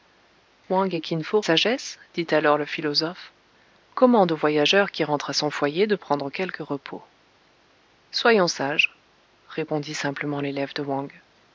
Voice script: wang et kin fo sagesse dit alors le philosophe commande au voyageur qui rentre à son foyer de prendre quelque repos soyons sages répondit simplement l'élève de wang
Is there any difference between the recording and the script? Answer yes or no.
no